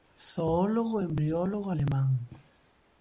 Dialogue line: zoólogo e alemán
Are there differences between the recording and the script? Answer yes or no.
yes